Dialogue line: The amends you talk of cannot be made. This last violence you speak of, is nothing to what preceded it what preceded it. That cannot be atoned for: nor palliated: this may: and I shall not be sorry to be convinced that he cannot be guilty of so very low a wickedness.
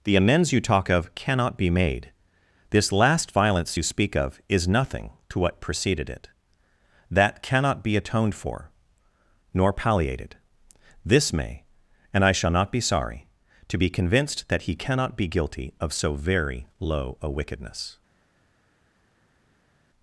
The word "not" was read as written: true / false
true